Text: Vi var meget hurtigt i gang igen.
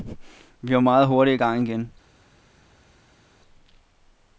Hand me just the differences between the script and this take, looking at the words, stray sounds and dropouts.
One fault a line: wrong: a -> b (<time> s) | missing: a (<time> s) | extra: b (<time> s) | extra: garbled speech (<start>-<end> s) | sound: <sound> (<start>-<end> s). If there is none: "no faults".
no faults